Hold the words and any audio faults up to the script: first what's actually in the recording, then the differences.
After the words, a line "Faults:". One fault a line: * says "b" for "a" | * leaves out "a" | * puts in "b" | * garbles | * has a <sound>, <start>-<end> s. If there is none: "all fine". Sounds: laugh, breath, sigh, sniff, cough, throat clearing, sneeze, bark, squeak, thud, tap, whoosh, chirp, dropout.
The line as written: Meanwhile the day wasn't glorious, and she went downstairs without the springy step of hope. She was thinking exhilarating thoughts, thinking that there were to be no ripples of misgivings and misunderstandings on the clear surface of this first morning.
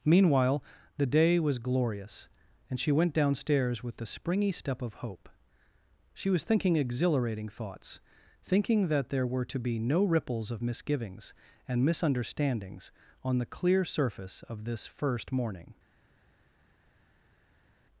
Meanwhile the day was glorious, and she went downstairs with the springy step of hope. She was thinking exhilarating thoughts, thinking that there were to be no ripples of misgivings and misunderstandings on the clear surface of this first morning.
Faults:
* says "was" for "wasn't"
* says "with" for "without"